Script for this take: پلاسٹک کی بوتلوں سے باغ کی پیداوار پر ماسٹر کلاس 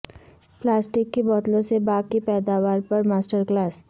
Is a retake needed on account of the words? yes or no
no